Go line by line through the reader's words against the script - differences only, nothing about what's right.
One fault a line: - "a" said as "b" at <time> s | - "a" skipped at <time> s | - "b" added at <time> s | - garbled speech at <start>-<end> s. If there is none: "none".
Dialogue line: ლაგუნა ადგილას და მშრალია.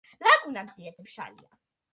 none